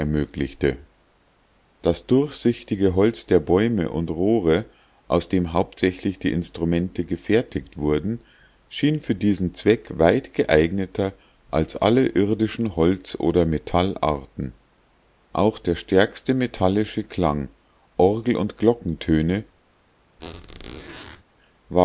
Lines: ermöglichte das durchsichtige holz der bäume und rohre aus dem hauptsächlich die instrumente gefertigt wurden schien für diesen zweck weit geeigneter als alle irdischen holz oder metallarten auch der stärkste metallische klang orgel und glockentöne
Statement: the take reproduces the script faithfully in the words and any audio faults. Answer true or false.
false